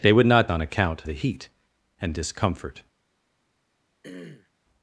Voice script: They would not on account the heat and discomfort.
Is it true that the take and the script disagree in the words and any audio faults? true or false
true